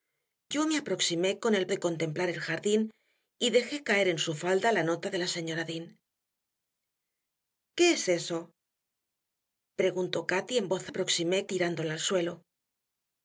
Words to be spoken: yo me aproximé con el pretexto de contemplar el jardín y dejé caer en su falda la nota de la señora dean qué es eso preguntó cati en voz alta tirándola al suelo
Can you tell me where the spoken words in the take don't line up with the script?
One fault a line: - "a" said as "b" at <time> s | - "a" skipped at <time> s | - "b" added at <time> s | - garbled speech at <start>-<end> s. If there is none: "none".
- "pretexto" skipped at 1.7 s
- "alta" said as "aproximé" at 10.9 s